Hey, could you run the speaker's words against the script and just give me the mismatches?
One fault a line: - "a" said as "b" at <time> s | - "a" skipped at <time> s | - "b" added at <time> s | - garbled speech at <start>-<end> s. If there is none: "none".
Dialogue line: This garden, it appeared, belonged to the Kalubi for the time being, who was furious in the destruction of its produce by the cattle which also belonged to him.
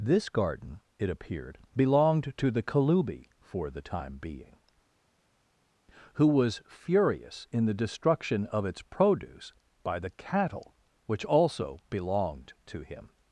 none